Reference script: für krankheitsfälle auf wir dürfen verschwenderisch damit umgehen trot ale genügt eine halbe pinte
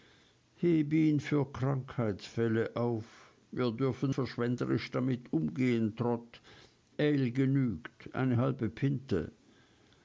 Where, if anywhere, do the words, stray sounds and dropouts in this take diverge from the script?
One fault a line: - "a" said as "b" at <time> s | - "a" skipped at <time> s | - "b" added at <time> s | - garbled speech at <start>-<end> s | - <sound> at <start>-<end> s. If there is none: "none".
none